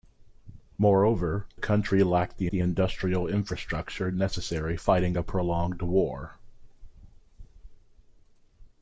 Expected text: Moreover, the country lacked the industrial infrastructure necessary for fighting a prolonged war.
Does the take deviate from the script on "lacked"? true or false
false